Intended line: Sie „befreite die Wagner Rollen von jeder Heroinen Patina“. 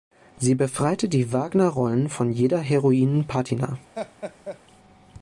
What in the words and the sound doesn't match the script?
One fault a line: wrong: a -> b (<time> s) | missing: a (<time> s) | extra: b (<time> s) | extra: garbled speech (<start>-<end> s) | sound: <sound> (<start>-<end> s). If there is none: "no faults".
sound: laugh (3.9-4.6 s)